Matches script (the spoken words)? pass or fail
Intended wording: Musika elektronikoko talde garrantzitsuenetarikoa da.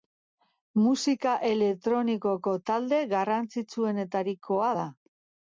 pass